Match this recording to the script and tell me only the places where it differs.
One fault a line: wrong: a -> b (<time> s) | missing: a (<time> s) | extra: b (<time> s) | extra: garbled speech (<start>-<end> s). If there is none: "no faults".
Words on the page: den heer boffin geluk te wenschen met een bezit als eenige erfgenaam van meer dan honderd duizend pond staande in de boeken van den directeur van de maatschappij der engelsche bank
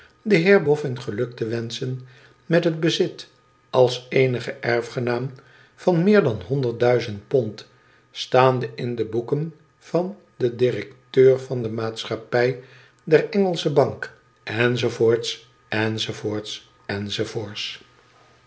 wrong: een -> het (2.6 s)